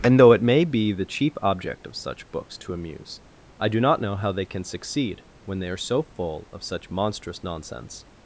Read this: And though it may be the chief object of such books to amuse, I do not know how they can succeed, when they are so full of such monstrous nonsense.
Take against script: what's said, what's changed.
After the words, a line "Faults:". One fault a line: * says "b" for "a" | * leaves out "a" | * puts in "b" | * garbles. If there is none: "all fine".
And though it may be the chief object of such books to amuse, I do not know how they can succeed, when they are so full of such monstrous nonsense.
Faults:
all fine